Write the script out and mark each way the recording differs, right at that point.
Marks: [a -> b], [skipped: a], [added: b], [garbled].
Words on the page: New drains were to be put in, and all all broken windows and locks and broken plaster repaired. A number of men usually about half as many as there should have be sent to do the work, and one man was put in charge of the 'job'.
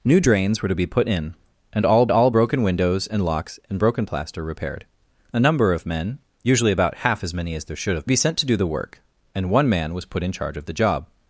New drains were to be put in, and all all broken windows and locks and broken plaster repaired. A number of men usually about half as many as there should have be sent to do the work, and one man was put in charge of the 'job'.